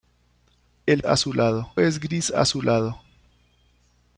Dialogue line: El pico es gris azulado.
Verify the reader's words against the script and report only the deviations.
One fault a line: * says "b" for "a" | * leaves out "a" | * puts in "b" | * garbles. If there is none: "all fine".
* says "azulado" for "pico"